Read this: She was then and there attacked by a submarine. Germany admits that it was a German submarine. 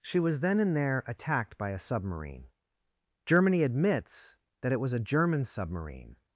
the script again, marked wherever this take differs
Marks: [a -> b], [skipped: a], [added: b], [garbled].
She was then and there attacked by a submarine. Germany admits that it was a German submarine.